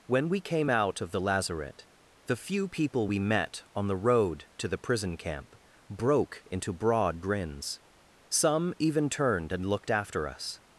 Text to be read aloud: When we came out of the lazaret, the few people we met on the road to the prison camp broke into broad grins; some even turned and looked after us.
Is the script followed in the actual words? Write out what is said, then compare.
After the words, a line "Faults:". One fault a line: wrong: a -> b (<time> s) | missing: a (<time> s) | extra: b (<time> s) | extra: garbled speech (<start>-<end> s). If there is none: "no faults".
When we came out of the lazaret, the few people we met on the road to the prison camp broke into broad grins; some even turned and looked after us.
Faults:
no faults